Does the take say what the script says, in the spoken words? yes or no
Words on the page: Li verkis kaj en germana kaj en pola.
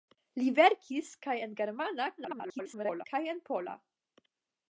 no